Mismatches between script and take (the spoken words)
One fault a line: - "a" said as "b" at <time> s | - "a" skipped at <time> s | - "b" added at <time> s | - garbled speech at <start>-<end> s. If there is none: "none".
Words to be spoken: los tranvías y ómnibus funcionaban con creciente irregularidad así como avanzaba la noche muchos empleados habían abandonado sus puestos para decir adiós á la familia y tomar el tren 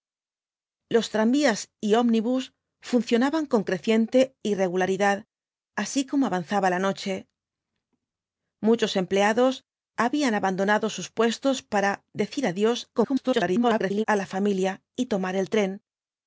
- garbled speech at 12.9-14.0 s